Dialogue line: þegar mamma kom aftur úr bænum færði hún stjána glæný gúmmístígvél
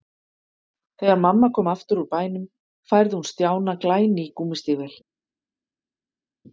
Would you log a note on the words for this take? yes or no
no